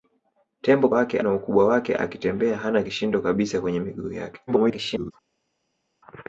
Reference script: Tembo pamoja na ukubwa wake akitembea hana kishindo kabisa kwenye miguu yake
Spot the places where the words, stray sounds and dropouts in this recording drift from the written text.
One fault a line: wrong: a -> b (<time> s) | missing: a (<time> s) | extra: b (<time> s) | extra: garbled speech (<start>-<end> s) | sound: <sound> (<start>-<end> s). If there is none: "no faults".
wrong: pamoja -> wake (0.9 s)
extra: garbled speech (4.5-5.1 s)